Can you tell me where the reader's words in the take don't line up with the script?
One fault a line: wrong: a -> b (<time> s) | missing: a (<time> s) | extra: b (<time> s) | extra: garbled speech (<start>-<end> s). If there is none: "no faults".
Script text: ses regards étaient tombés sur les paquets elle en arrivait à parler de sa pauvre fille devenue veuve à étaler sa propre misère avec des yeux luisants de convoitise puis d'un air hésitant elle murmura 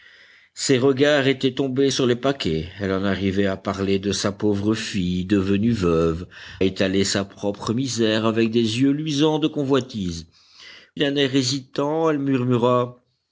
missing: à (6.2 s)
missing: puis (10.3 s)